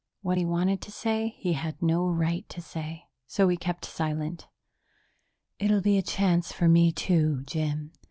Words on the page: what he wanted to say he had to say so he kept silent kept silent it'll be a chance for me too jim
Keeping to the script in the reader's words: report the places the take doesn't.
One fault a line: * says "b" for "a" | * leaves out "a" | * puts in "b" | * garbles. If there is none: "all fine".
* puts in "no right"
* leaves out "kept silent"